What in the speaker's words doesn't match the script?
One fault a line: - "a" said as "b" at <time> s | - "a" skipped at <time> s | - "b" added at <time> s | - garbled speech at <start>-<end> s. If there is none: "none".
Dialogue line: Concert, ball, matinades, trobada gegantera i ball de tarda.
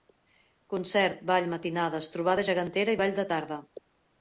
none